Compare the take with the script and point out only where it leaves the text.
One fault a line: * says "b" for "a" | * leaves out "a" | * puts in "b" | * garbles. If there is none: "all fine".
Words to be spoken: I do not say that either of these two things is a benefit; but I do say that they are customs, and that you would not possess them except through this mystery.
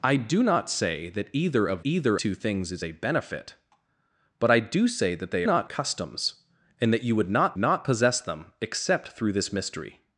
* says "either" for "these"
* says "not" for "are"
* puts in "not"